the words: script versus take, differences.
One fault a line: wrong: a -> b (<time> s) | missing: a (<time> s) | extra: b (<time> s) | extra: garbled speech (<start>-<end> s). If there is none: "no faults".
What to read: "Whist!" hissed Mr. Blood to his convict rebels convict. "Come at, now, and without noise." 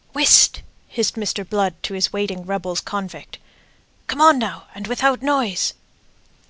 wrong: convict -> waiting (2.1 s)
wrong: at -> on (4.2 s)